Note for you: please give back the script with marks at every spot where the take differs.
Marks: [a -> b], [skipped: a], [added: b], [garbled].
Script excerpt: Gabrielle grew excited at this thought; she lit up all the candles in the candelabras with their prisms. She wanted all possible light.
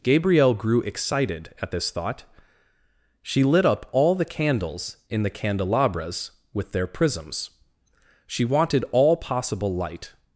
Gabrielle grew excited at this thought; she lit up all the candles in the candelabras with their prisms. She wanted all possible light.